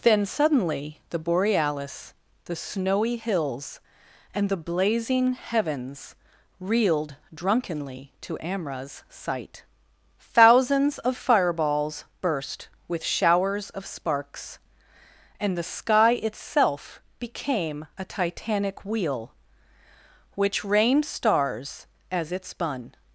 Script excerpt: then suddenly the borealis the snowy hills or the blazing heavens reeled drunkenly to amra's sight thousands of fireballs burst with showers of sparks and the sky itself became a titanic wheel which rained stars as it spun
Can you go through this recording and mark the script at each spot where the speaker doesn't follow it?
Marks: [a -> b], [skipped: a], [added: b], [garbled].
then suddenly the borealis the snowy hills [or -> and] the blazing heavens reeled drunkenly to amra's sight thousands of fireballs burst with showers of sparks and the sky itself became a titanic wheel which rained stars as it spun